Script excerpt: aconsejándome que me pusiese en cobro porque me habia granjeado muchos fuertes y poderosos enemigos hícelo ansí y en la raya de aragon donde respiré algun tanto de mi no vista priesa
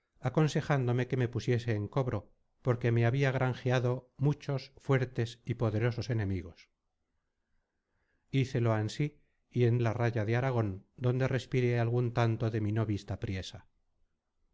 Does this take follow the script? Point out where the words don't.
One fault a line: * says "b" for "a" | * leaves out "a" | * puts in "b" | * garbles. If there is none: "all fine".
all fine